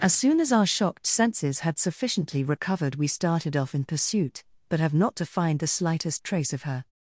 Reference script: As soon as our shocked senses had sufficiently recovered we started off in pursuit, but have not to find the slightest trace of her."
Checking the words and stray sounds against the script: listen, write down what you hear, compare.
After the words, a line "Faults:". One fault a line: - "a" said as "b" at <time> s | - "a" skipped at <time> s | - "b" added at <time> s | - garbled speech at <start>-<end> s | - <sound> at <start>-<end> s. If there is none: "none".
As soon as our shocked senses had sufficiently recovered we started off in pursuit, but have not to find the slightest trace of her."
Faults:
none